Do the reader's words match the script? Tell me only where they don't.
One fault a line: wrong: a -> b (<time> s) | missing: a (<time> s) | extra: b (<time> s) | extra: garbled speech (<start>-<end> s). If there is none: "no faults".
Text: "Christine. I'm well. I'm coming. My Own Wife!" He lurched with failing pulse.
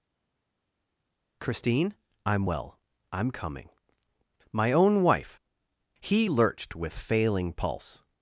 no faults